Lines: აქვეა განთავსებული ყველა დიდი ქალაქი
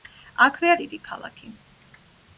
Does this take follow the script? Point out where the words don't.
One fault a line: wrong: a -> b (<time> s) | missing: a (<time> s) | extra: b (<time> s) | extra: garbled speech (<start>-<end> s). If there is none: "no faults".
missing: განთავსებული ყველა (0.8 s)